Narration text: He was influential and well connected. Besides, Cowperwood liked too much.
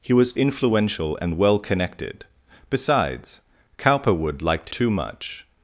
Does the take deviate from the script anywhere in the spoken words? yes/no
no